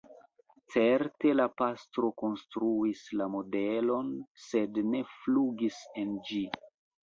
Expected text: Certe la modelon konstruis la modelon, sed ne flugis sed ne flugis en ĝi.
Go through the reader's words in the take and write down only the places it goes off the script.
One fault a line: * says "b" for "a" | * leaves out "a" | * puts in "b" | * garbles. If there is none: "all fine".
* says "pastro" for "modelon"
* leaves out "sed ne flugis"